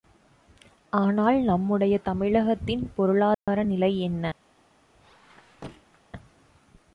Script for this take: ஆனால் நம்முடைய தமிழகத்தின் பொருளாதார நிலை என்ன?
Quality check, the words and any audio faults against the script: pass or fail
fail